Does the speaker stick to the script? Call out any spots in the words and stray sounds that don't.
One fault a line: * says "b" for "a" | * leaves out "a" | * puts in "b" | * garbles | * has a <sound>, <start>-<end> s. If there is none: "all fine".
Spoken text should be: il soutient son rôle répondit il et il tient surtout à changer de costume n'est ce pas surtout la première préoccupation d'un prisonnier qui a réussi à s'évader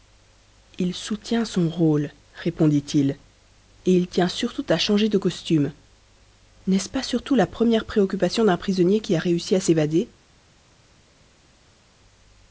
all fine